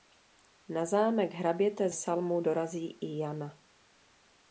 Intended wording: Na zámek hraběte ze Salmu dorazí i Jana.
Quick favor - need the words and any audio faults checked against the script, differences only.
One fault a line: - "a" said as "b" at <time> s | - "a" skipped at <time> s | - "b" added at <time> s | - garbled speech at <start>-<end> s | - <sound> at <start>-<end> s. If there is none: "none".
- "ze" skipped at 1.9 s